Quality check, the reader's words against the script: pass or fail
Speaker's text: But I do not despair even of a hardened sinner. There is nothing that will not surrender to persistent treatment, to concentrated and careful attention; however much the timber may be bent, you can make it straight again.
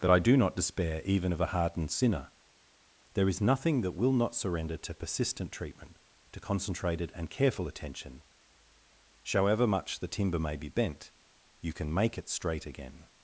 fail